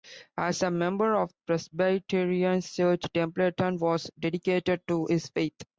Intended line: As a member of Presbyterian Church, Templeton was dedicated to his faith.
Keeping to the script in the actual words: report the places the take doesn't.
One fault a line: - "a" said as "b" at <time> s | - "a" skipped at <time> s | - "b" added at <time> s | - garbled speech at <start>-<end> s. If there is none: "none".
none